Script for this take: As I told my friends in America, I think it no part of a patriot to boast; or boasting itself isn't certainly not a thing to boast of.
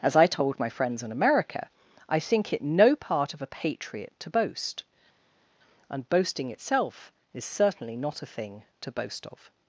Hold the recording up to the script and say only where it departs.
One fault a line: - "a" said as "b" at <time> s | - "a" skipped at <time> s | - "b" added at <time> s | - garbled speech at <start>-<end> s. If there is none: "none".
- "or" said as "and" at 5.9 s
- "isn't" said as "is" at 7.3 s